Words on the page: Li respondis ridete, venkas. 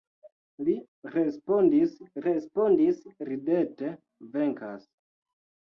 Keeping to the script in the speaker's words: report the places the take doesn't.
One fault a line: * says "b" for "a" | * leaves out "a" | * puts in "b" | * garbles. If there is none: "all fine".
* puts in "respondis"